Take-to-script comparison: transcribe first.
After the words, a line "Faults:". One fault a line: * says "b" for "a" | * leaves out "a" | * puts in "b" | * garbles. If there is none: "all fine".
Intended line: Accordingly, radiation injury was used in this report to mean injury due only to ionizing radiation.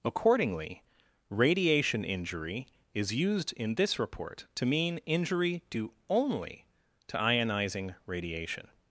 Accordingly, radiation injury is used in this report to mean injury due only to ionizing radiation.
Faults:
* says "is" for "was"